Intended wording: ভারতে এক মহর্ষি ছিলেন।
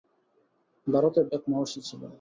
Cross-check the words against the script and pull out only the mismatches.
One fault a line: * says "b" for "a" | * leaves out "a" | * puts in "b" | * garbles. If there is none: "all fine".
all fine